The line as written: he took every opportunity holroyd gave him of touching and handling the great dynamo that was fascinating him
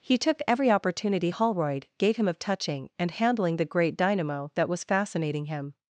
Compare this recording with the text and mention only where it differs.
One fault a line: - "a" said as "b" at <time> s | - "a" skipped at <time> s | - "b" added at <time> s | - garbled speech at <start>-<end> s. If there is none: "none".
none